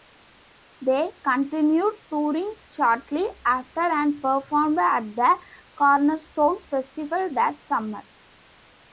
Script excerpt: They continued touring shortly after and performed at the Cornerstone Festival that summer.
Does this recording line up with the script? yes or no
yes